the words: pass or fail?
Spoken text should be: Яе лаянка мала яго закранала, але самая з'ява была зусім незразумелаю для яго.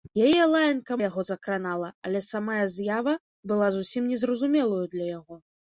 fail